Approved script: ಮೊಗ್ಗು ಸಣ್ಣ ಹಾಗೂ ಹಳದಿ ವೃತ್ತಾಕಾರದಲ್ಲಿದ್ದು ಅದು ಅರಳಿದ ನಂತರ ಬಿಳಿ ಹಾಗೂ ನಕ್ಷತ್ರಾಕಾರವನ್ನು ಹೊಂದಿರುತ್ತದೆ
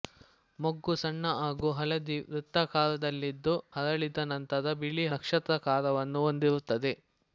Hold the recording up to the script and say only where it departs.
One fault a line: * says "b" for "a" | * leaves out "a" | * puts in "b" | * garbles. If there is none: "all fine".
* leaves out "ಅದು"
* leaves out "ಹಾಗೂ"